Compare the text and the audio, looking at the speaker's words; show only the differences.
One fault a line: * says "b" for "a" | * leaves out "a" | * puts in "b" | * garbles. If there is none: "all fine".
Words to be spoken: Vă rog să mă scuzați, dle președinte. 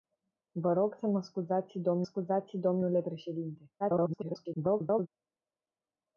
* puts in "scuzați"
* garbles